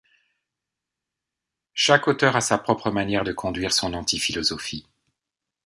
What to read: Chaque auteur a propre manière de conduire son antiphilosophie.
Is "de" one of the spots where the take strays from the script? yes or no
no